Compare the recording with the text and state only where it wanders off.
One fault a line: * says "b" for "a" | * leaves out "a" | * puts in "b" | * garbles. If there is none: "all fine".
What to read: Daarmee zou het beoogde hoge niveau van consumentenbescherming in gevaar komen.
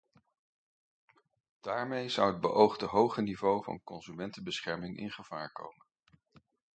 all fine